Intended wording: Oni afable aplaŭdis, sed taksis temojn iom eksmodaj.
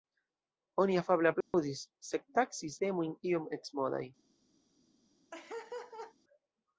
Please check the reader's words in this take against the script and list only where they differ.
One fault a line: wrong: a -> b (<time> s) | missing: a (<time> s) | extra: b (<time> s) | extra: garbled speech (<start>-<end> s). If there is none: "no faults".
no faults